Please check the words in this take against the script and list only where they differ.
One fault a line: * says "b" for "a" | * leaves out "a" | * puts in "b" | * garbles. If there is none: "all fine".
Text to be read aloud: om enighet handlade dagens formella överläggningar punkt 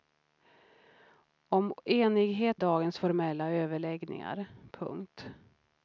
* leaves out "handlade"